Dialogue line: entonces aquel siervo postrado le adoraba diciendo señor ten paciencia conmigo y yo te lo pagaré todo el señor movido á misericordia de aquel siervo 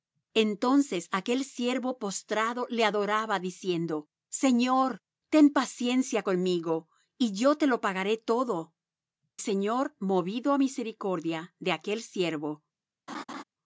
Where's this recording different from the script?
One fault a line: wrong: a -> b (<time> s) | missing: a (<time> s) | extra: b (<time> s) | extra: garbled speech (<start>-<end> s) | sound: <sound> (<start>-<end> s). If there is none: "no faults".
missing: el (8.7 s)
sound: laugh (13.1-13.4 s)